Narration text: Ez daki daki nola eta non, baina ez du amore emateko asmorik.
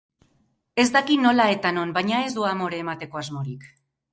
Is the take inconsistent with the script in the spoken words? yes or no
yes